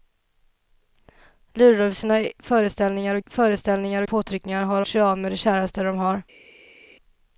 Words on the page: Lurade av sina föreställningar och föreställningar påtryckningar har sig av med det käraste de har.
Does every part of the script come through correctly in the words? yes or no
yes